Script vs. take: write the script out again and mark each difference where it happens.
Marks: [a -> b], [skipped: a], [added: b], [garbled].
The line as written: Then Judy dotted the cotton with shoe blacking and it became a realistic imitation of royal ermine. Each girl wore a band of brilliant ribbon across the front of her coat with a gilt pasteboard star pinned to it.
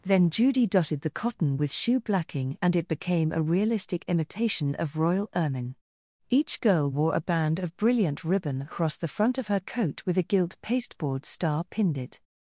Then Judy dotted the cotton with shoe blacking and it became a realistic imitation of royal ermine. Each girl wore a band of brilliant ribbon across the front of her coat with a gilt pasteboard star pinned [skipped: to] it.